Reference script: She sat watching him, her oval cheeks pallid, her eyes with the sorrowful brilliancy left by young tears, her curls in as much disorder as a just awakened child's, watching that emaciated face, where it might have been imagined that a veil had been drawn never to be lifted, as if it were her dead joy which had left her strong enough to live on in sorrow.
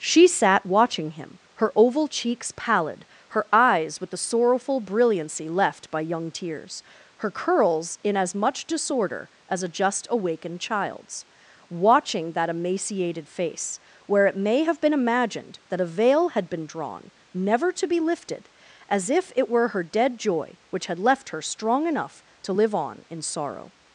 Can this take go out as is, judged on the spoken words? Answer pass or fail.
fail